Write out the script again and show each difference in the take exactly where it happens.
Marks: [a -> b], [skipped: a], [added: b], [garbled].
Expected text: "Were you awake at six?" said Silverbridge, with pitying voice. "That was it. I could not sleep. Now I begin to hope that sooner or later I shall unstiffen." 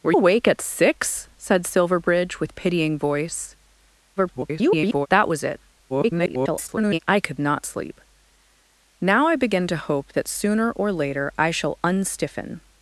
"Were [skipped: you] awake at six?" said Silverbridge, with pitying voice. [garbled] "That was it. [garbled] I could not sleep. Now I begin to hope that sooner or later I shall unstiffen."